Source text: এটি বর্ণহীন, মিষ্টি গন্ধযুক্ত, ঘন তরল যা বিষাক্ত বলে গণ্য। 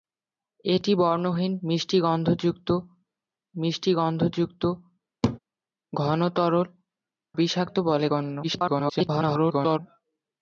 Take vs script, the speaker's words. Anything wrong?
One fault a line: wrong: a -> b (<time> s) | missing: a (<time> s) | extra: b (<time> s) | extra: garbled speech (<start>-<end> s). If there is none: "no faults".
extra: মিষ্টি গন্ধযুক্ত (3.6 s)
missing: যা (6.7 s)
extra: garbled speech (8.4-9.8 s)